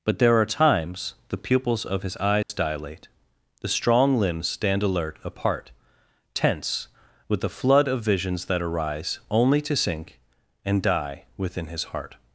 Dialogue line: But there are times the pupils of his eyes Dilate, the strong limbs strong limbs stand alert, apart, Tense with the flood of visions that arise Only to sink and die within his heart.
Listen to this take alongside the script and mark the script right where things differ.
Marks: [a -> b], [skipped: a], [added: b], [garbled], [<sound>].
But there are times the pupils of his eyes [dropout] Dilate, the strong limbs [skipped: strong limbs] stand alert, apart, Tense with the flood of visions that arise Only to sink and die within his heart.